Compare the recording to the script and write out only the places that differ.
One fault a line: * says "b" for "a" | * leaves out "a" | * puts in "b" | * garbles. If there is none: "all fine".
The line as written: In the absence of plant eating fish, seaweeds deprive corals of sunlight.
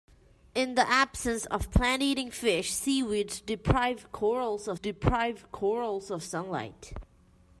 * puts in "deprive corals of"